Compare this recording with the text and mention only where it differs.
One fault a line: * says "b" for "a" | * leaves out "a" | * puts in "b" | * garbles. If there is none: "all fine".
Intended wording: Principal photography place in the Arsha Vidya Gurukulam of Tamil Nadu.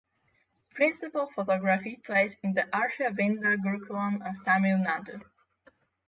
all fine